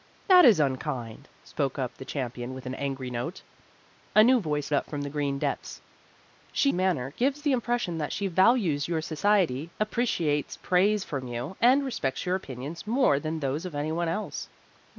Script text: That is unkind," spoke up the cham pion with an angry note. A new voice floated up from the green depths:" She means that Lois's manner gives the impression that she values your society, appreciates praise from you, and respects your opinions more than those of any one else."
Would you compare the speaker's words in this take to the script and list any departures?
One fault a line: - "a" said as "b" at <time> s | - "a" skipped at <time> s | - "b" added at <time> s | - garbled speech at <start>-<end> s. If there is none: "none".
- "floated" skipped at 4.7 s
- "means that Lois's" skipped at 6.7 s